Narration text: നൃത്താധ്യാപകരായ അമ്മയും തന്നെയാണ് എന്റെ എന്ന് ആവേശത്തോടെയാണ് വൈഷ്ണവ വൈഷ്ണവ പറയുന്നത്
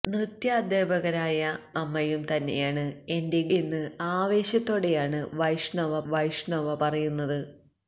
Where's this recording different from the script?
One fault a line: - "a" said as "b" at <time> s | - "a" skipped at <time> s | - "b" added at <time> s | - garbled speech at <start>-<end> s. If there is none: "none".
none